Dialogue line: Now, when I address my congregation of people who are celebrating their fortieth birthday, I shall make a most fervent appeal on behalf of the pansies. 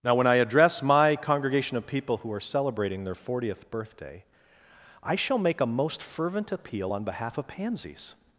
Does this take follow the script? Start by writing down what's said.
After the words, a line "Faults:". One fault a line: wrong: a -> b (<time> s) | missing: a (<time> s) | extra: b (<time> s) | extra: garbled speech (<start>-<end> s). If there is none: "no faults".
Now, when I address my congregation of people who are celebrating their fortieth birthday, I shall make a most fervent appeal on behalf of pansies.
Faults:
missing: the (7.5 s)